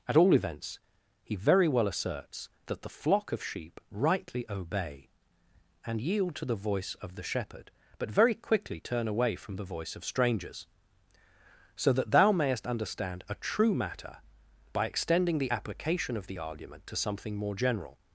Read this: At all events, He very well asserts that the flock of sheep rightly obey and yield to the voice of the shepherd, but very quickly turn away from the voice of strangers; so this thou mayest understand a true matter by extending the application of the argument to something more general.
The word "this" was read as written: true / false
false